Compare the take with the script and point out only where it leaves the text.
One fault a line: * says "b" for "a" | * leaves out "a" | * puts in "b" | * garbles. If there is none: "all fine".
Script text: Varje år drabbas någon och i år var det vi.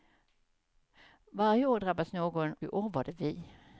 * leaves out "och"